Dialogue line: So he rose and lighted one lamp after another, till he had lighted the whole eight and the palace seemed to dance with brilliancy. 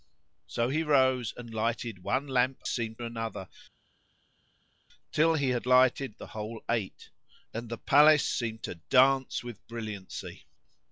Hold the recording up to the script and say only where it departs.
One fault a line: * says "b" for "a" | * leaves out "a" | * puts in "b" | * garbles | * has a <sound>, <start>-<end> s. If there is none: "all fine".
* says "seemed" for "after"